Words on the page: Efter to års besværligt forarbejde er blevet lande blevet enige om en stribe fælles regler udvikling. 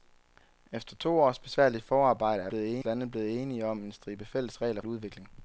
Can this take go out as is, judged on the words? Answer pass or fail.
pass